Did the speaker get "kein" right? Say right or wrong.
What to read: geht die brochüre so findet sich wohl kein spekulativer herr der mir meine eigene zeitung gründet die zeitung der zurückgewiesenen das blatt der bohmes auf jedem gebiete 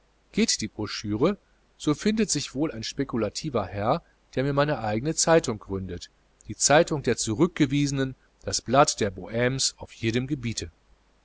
wrong